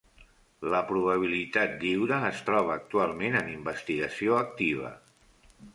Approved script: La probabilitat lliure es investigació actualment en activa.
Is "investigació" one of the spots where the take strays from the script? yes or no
yes